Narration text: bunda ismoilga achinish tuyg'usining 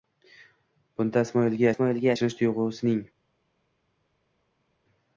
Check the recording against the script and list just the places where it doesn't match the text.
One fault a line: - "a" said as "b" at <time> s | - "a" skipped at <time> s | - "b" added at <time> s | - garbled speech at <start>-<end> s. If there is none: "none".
- "ismoilga" added at 1.7 s